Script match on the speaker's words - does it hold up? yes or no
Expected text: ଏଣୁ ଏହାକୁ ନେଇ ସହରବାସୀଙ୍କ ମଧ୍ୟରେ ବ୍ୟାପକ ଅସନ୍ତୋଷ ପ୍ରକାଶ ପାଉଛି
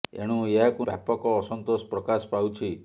no